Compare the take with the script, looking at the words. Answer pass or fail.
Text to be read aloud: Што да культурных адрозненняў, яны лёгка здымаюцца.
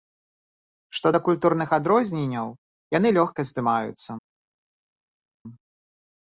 pass